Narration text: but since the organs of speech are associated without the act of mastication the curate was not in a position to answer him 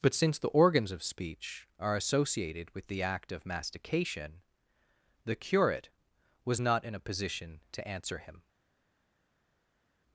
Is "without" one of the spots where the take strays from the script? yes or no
yes